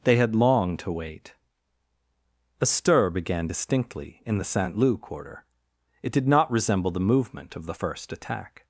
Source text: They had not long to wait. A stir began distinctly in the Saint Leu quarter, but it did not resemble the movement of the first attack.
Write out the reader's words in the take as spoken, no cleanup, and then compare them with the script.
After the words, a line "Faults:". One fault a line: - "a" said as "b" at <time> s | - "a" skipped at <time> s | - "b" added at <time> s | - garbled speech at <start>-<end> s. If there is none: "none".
They had long to wait. A stir began distinctly in the Saint Leu quarter, it did not resemble the movement of the first attack.
Faults:
- "not" skipped at 0.3 s
- "but" skipped at 5.4 s